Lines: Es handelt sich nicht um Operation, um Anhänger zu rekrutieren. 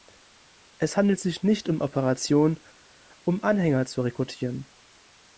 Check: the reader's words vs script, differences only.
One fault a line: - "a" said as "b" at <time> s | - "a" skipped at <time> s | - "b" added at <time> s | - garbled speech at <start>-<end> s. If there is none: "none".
none